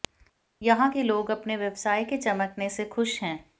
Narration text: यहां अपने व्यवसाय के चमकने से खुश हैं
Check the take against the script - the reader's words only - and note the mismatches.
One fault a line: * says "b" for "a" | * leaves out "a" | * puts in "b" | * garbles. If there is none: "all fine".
* puts in "के लोग"